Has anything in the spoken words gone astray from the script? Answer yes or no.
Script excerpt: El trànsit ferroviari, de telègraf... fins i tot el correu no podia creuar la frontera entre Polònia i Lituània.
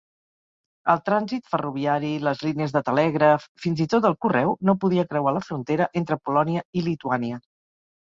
yes